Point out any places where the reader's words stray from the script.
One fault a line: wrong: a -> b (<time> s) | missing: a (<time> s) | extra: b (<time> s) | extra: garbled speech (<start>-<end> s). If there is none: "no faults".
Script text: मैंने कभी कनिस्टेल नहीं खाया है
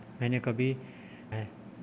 missing: कनिस्टेल नहीं खाया (0.7 s)